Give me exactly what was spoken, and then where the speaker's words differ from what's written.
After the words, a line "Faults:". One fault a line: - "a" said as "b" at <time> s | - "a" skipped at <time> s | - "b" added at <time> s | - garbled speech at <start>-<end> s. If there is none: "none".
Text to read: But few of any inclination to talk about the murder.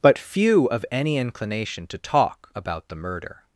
But few of any inclination to talk about the murder.
Faults:
none